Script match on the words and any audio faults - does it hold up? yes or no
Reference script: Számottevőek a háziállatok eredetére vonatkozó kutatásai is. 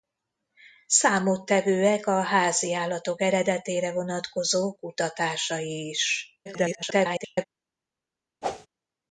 no